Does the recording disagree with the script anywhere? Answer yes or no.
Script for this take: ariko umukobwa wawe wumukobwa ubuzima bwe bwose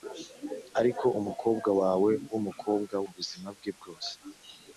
no